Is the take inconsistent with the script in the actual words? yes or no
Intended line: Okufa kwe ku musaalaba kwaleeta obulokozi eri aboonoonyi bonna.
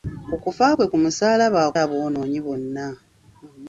yes